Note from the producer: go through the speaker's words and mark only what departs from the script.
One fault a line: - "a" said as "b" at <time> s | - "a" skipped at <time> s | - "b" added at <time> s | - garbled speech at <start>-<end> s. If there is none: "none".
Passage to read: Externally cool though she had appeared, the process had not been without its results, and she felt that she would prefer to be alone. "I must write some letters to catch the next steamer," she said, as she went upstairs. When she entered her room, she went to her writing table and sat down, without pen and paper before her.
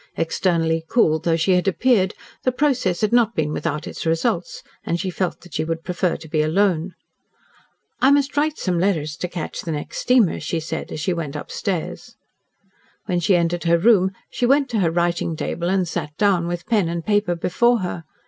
- "without" said as "with" at 16.5 s